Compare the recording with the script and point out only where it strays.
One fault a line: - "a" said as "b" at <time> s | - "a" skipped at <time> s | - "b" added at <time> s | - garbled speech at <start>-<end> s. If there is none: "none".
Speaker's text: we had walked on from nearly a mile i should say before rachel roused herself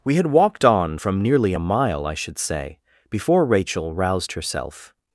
none